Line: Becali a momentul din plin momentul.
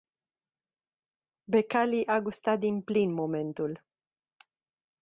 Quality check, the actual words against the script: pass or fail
fail